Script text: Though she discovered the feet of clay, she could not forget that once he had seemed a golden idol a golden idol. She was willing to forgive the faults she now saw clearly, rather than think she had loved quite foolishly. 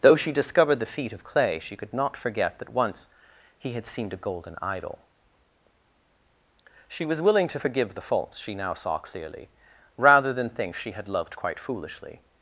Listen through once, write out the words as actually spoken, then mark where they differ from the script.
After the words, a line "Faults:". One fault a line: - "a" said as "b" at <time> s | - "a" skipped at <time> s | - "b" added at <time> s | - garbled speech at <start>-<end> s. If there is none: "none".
Though she discovered the feet of clay, she could not forget that once he had seemed a golden idol. She was willing to forgive the faults she now saw clearly, rather than think she had loved quite foolishly.
Faults:
- "a golden idol" skipped at 5.0 s